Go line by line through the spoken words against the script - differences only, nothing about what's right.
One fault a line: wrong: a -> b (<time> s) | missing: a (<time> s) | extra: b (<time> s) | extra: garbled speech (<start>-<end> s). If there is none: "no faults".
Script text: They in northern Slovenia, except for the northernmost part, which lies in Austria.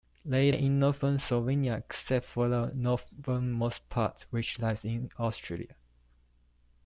no faults